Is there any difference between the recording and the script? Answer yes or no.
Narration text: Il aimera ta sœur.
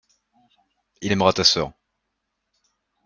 no